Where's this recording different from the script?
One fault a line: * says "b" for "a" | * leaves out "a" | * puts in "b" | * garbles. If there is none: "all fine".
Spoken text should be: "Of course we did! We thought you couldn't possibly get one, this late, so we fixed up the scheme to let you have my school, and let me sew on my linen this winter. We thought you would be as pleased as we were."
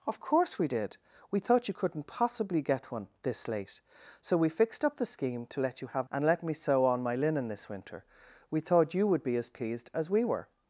* leaves out "my school"